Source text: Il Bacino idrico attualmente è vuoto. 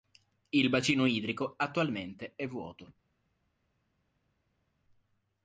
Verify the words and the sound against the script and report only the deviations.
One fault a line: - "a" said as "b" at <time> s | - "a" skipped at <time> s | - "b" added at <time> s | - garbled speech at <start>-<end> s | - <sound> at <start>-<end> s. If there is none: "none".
none